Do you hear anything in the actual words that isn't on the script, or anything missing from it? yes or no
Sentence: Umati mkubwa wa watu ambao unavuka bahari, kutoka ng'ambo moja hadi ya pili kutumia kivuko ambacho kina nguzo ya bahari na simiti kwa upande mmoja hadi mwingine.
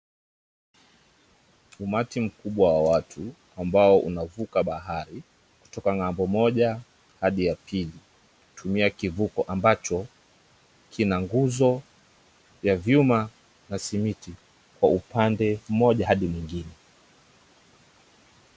yes